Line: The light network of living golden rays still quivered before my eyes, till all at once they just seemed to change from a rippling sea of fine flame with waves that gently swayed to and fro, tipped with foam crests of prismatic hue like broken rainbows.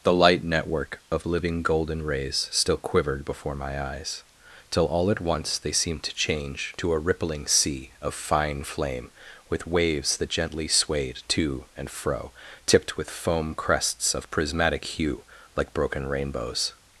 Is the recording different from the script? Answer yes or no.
yes